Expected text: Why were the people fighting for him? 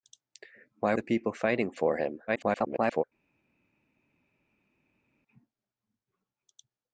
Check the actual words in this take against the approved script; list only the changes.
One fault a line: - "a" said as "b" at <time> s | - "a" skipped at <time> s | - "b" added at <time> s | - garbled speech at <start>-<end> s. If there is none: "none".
- "were" skipped at 0.9 s
- garbled speech at 2.3-3.0 s